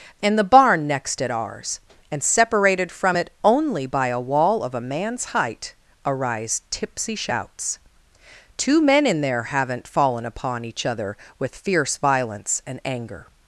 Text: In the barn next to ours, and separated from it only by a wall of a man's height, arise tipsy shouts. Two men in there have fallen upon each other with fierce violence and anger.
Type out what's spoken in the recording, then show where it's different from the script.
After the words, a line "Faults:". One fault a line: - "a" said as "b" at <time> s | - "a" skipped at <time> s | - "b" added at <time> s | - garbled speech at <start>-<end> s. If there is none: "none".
In the barn next at ours, and separated from it only by a wall of a man's height, arise tipsy shouts. Two men in there haven't fallen upon each other with fierce violence and anger.
Faults:
- "to" said as "at" at 1.2 s
- "have" said as "haven't" at 9.4 s